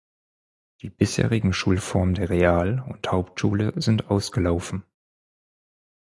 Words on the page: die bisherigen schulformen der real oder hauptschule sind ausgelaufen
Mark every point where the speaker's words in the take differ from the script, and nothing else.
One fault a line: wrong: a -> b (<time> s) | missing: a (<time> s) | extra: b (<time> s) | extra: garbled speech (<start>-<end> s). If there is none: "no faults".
wrong: oder -> und (2.9 s)